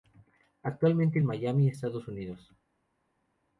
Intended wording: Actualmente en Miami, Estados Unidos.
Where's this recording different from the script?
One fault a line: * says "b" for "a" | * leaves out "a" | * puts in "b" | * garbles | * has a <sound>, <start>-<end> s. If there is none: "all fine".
all fine